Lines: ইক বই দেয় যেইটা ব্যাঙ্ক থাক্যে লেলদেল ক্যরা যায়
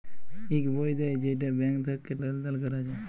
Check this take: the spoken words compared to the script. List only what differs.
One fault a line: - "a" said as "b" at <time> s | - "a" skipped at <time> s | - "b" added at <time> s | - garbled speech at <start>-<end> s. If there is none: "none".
none